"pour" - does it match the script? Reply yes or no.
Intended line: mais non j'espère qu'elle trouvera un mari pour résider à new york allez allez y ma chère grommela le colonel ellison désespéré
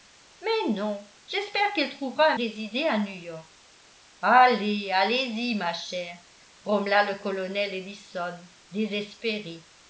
no